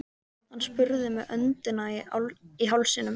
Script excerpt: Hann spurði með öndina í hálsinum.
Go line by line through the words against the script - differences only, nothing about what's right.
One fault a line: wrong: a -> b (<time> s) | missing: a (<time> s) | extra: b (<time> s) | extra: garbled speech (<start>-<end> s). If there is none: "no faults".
no faults